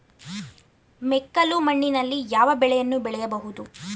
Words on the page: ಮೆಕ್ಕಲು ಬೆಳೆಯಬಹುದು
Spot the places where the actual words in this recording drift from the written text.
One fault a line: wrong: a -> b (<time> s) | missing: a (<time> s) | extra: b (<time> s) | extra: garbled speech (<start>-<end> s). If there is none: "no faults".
extra: ಮಣ್ಣಿನಲ್ಲಿ ಯಾವ ಬೆಳೆಯನ್ನು (1.6 s)